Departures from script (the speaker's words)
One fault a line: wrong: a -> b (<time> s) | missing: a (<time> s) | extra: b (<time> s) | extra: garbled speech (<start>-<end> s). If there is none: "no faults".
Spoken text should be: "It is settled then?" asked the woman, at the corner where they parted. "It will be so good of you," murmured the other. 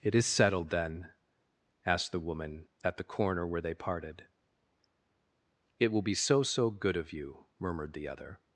extra: so (6.4 s)